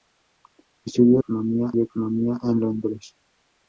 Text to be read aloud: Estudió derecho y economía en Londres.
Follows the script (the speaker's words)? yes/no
no